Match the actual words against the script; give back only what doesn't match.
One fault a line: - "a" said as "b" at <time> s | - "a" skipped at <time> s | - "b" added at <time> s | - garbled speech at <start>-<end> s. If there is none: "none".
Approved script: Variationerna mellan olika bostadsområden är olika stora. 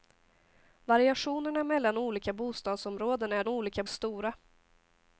none